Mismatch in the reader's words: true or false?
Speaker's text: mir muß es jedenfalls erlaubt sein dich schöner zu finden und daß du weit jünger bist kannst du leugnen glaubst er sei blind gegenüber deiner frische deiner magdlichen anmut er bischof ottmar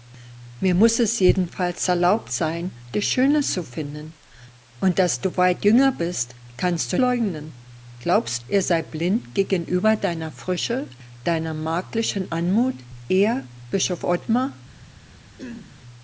false